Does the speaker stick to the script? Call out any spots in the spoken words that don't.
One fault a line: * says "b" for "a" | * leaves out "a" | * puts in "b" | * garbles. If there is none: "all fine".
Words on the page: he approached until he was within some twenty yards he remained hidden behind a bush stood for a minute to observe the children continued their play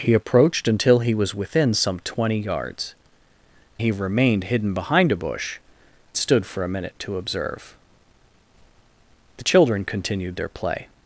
all fine